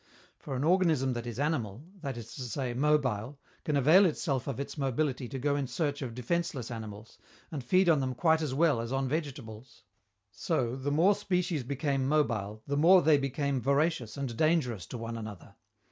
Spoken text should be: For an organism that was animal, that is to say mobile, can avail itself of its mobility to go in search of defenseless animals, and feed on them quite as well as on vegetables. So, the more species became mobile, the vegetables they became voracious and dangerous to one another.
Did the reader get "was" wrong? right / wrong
wrong